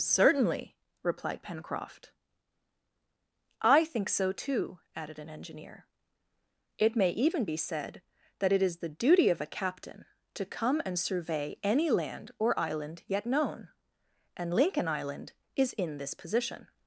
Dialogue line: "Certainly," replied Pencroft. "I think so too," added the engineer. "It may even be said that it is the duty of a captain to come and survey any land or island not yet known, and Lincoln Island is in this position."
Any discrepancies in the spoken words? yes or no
yes